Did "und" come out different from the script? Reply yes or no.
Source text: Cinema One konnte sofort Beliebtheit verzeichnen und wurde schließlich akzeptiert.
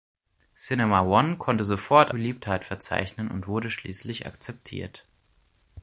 no